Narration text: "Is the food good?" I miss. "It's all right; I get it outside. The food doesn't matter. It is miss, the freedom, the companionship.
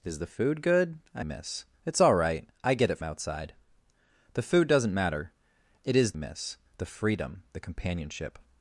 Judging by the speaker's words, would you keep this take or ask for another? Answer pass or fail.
pass